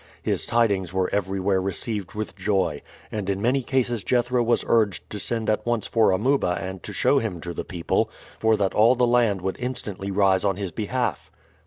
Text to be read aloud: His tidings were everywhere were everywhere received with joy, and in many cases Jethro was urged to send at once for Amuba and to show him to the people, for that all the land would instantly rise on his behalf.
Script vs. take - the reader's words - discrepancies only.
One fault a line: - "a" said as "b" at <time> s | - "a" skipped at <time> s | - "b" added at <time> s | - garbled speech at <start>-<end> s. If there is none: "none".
- "were everywhere" skipped at 1.6 s